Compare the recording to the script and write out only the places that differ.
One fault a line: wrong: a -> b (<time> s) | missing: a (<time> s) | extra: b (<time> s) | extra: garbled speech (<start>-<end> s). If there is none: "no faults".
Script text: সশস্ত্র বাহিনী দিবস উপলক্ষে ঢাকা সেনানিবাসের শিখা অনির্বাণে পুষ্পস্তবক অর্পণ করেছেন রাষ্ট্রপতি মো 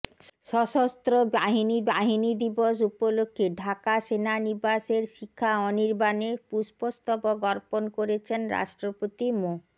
extra: বাহিনী (1.9 s)